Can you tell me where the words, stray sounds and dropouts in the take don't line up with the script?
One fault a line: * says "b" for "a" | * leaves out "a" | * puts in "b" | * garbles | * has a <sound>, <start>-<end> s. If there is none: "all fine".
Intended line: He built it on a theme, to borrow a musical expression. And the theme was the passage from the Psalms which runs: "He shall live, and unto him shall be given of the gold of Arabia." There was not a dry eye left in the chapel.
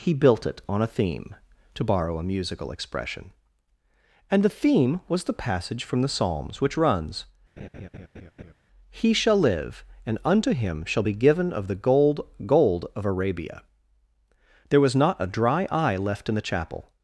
* has a laugh, 7.6-8.5 s
* puts in "gold"